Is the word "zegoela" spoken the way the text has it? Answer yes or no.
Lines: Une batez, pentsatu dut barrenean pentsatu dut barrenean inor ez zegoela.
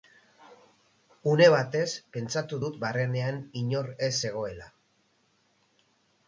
yes